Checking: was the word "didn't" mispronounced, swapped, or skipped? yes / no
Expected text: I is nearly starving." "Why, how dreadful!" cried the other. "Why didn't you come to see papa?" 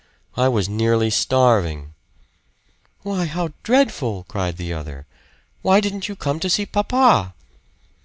no